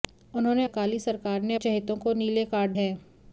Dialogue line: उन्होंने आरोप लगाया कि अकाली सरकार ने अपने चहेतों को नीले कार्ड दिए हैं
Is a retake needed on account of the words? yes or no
yes